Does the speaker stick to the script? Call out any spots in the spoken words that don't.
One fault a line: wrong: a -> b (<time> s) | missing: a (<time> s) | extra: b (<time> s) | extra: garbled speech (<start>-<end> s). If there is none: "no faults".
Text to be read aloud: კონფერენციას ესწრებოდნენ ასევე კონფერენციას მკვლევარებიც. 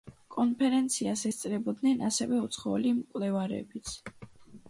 wrong: კონფერენციას -> უცხოელი (2.4 s)